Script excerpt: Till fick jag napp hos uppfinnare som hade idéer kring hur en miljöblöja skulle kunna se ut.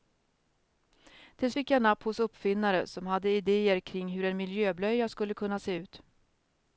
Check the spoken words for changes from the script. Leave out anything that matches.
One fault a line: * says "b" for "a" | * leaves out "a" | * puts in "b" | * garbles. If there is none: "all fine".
all fine